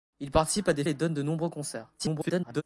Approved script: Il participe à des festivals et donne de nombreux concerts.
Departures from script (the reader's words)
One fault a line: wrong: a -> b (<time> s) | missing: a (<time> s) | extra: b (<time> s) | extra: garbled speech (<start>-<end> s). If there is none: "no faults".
missing: festivals (0.8 s)
extra: garbled speech (2.0-2.6 s)